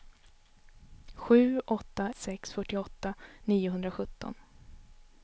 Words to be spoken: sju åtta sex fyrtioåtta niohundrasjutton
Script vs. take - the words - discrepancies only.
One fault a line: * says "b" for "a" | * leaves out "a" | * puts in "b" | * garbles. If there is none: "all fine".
all fine